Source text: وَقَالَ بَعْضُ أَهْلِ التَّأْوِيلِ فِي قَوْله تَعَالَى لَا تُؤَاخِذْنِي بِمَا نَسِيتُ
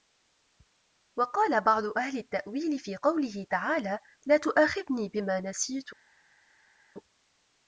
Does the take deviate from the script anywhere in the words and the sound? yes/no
no